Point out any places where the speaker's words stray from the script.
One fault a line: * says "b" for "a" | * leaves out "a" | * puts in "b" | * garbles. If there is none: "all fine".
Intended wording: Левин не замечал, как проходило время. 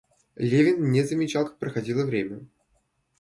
all fine